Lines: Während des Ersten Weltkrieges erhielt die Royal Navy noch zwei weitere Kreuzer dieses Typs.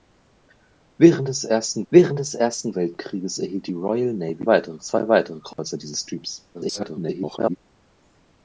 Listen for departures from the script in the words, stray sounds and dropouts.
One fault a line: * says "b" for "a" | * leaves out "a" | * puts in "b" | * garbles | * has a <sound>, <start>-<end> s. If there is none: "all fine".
* puts in "während des Ersten"
* says "weitere" for "noch"
* has a dropout, 5.5-5.6 s
* garbles